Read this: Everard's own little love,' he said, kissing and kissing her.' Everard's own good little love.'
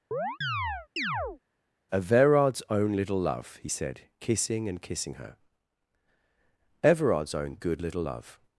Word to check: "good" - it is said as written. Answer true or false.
true